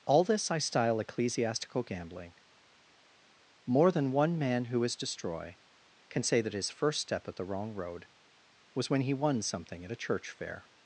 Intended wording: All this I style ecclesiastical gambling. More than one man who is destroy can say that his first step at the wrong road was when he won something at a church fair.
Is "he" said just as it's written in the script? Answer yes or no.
yes